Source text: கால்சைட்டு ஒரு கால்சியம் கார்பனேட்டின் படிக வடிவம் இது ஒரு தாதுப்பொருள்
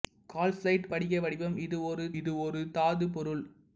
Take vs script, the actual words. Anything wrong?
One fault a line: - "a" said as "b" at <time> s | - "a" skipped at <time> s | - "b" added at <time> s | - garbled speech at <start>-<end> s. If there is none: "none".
- "ஒரு கால்சியம் கார்பனேட்டின் படிக வடிவம்" said as "படிக வடிவம் இது ஒரு" at 0.9 s